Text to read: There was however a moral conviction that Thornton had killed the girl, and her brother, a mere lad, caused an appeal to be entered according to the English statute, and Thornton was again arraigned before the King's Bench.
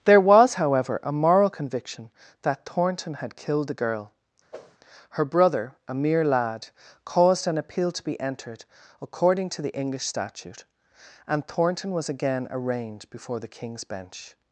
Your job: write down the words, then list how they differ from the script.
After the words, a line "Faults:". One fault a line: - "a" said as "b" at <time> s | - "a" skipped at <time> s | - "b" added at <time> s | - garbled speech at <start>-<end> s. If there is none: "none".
There was however a moral conviction that Thornton had killed the girl, her brother, a mere lad, caused an appeal to be entered according to the English statute, and Thornton was again arraigned before the King's Bench.
Faults:
- "and" skipped at 4.1 s